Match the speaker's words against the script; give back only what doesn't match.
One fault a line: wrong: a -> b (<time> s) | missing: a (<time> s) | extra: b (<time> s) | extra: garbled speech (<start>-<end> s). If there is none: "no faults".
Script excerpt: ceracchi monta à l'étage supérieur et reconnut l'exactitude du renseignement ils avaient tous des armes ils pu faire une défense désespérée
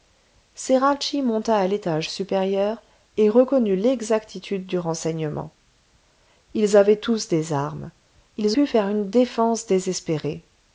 no faults